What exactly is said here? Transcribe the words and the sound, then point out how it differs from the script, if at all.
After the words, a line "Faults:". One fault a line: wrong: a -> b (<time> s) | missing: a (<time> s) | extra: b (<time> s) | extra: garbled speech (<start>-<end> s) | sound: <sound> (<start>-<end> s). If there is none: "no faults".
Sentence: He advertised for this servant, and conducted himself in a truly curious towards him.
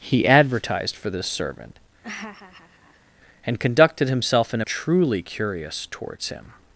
He advertised for this servant, and conducted himself in a truly curious towards him.
Faults:
sound: laugh (2.0-3.1 s)